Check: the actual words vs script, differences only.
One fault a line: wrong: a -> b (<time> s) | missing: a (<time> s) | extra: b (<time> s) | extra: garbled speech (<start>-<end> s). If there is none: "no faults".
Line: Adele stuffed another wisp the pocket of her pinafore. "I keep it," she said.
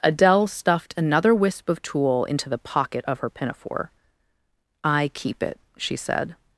extra: of tulle into (1.7 s)